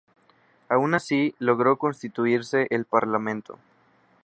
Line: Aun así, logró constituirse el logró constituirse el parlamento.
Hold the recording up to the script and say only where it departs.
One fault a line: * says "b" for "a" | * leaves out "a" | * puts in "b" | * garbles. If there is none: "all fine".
* leaves out "logró constituirse el"